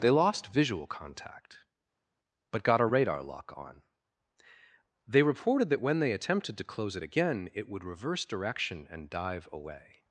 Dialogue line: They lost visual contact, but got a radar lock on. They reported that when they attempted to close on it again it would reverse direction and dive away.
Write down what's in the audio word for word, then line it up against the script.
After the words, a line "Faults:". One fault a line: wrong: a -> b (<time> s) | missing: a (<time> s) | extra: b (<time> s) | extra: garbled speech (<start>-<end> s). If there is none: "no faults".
They lost visual contact, but got a radar lock on. They reported that when they attempted to close it again it would reverse direction and dive away.
Faults:
missing: on (6.9 s)